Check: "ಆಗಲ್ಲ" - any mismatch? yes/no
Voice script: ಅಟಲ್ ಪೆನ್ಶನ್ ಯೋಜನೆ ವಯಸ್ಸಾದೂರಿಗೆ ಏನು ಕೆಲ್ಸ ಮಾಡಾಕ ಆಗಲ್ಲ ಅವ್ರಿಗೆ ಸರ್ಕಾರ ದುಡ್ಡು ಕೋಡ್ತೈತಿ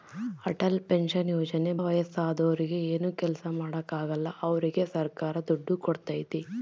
no